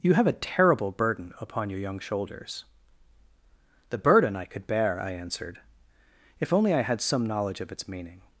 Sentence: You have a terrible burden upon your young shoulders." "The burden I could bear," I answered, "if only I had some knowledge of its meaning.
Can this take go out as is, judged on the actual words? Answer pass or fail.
pass